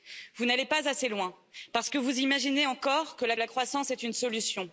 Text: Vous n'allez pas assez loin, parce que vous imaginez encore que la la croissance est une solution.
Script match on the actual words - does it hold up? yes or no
yes